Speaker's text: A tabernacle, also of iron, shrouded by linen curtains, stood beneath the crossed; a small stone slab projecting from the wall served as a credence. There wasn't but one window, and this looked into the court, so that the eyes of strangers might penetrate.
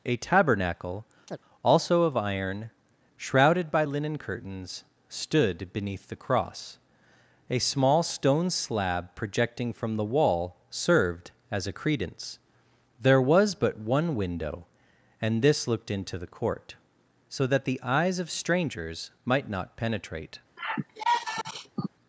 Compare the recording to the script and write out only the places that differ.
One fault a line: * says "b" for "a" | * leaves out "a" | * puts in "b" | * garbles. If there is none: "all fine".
* says "cross" for "crossed"
* says "was" for "wasn't"
* puts in "not"